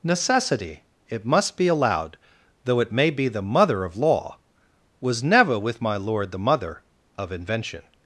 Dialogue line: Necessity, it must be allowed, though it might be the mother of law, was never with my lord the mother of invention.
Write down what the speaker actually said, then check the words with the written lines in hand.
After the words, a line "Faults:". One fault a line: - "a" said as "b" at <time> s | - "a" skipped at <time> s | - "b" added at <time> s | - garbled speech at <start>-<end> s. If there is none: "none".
Necessity, it must be allowed, though it may be the mother of law, was never with my lord the mother of invention.
Faults:
- "might" said as "may" at 2.9 s